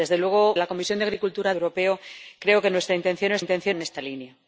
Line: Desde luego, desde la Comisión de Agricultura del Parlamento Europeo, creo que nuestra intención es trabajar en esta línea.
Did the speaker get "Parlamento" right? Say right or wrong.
wrong